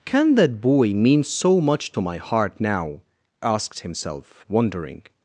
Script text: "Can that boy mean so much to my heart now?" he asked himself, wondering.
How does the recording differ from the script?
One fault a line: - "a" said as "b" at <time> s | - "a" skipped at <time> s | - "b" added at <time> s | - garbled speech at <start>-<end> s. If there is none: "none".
- "he" skipped at 3.0 s